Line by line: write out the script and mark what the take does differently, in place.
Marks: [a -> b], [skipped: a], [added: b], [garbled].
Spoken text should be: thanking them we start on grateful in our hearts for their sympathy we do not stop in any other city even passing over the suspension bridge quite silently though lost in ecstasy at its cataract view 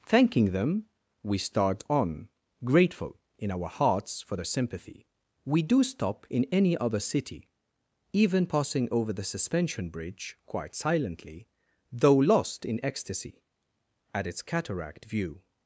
thanking them we start on grateful in our hearts for their sympathy we do [skipped: not] stop in any other city even passing over the suspension bridge quite silently though lost in ecstasy at its cataract view